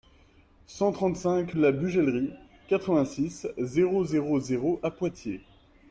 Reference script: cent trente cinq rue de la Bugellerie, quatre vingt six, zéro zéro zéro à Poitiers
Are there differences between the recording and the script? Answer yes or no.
yes